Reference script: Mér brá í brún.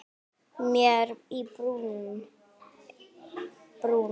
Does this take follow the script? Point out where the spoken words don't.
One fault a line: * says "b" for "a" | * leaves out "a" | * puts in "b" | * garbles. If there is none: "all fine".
* leaves out "brá"